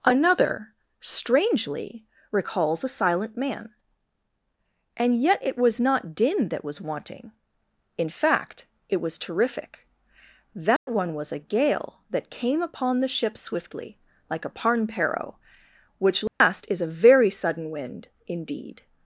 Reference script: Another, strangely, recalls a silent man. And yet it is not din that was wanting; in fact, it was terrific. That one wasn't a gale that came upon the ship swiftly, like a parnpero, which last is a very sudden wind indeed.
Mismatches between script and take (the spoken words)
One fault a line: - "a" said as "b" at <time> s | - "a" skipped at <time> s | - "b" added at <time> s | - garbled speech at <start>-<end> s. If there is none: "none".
- "is" said as "was" at 5.6 s
- "wasn't" said as "was" at 11.1 s